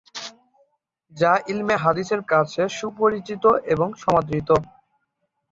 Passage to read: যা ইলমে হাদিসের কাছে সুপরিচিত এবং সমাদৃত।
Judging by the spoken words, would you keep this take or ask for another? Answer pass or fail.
pass